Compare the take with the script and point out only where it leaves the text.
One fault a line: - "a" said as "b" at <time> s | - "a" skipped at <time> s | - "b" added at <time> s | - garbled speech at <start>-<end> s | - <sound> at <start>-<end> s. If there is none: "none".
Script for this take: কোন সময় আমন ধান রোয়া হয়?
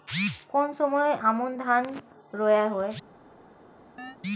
- chirp at 4.0-4.2 s